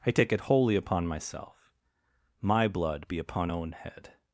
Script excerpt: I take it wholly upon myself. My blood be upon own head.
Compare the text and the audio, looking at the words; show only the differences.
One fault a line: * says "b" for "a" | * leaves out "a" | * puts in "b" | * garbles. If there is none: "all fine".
all fine